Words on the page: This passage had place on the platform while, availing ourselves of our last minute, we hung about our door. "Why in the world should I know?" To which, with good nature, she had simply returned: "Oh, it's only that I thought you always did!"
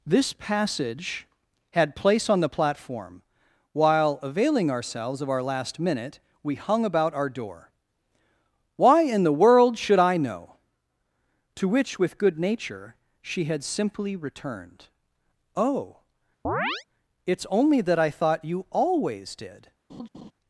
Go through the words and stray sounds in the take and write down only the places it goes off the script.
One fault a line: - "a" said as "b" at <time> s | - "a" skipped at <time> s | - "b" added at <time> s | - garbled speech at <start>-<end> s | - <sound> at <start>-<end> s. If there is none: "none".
- chirp at 16.4-16.8 s
- laugh at 19.9-20.3 s